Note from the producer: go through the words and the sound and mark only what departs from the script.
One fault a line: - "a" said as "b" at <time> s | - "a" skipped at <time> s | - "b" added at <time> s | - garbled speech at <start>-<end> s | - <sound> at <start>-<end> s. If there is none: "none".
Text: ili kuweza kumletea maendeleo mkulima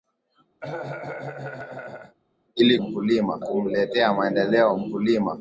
- cough at 0.6-2.2 s
- "kuweza" said as "mkulima" at 2.8 s